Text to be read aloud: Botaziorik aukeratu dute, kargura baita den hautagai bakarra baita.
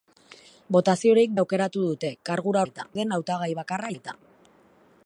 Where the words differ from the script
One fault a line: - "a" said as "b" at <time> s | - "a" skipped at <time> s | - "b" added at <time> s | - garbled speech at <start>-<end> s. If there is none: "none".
none